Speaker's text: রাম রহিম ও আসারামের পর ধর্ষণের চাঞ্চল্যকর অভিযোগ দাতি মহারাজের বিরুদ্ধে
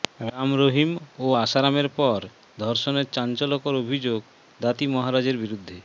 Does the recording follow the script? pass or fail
pass